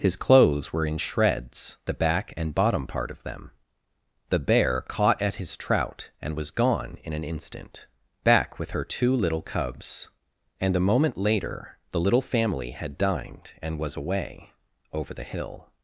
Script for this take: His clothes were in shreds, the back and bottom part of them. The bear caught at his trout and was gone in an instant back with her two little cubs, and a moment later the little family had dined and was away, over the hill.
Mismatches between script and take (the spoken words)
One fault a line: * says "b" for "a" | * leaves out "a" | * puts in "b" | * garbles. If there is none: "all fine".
all fine